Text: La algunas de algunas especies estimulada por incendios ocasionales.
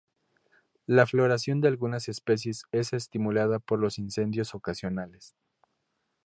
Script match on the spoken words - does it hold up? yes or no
no